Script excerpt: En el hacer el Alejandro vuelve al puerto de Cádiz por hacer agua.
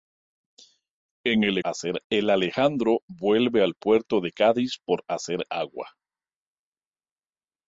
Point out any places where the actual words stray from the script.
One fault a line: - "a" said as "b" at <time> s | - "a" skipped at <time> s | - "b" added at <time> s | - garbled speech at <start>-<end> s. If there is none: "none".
none